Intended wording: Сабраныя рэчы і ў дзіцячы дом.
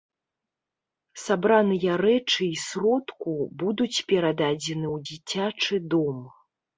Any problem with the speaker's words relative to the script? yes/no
yes